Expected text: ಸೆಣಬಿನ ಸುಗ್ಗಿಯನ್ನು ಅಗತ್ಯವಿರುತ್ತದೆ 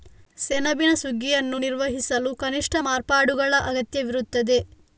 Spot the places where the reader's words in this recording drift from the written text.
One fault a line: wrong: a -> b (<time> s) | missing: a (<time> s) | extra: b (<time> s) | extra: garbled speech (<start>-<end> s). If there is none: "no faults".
extra: ನಿರ್ವಹಿಸಲು ಕನಿಷ್ಠ ಮಾರ್ಪಾಡುಗಳ (1.6 s)